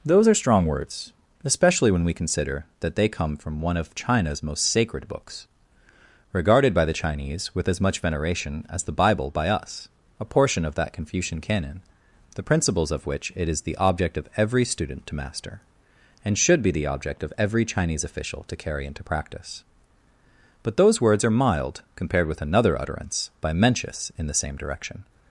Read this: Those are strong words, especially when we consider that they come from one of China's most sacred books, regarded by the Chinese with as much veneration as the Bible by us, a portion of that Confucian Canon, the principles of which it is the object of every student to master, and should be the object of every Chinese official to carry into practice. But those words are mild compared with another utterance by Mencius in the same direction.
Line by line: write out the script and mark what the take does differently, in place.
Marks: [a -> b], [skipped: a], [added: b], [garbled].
Those are strong words, especially when we consider that they come from one of China's most sacred books, regarded by the Chinese with as much veneration as the Bible by us, a portion of that Confucian Canon, the principles of which it is the object of every student to master, and should be the object of every Chinese official to carry into practice. But those words are mild compared with another utterance by Mencius in the same direction.